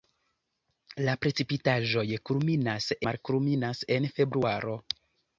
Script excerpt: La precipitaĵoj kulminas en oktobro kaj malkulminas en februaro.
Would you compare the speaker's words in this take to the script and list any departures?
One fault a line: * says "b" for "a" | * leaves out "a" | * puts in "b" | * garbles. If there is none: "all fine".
* leaves out "en oktobro kaj"